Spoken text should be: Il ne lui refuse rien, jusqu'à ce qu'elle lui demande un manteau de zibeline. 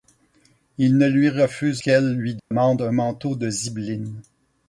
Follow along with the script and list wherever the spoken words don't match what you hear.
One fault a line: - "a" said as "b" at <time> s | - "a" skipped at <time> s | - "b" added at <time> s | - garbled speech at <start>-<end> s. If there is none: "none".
- "rien jusqu'à ce" skipped at 1.8 s